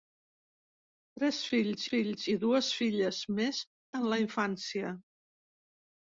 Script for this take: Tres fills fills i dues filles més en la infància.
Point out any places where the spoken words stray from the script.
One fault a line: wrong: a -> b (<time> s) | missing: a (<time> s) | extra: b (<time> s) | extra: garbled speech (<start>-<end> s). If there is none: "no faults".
no faults